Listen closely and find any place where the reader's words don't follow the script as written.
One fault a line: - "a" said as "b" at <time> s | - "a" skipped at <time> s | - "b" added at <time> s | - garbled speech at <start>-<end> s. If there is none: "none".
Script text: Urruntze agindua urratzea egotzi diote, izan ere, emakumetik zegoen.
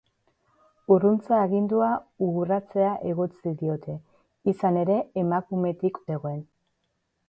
none